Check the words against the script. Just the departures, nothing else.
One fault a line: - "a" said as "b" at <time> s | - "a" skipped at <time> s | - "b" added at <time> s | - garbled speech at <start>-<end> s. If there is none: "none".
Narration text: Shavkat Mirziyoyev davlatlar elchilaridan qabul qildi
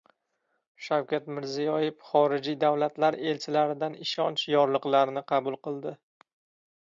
- "xorijiy" added at 2.1 s
- "ishonch yorliqlarini" added at 4.1 s